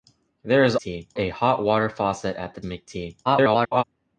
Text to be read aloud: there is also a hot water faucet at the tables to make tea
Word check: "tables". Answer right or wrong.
wrong